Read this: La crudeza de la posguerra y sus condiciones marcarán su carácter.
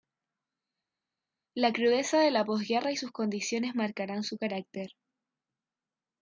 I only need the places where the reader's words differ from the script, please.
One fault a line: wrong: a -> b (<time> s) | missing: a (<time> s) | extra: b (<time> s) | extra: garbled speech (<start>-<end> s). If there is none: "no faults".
no faults